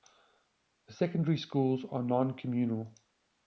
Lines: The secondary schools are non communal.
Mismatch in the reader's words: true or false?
false